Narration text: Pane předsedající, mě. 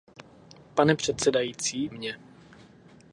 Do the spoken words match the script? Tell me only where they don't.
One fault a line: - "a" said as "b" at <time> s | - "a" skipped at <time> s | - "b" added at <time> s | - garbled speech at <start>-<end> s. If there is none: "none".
none